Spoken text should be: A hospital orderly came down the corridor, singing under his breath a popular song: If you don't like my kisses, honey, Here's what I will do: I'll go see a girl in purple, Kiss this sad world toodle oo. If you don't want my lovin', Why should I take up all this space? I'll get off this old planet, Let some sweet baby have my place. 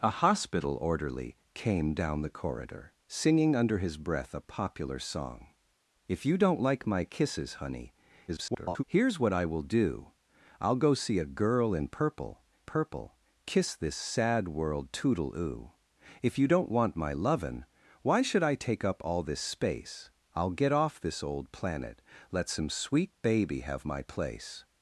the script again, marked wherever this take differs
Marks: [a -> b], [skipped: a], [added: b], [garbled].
A hospital orderly came down the corridor, singing under his breath a popular song: If you don't like my kisses, honey, [garbled] Here's what I will do: I'll go see a girl in purple, [added: purple] Kiss this sad world toodle oo. If you don't want my lovin', Why should I take up all this space? I'll get off this old planet, Let some sweet baby have my place.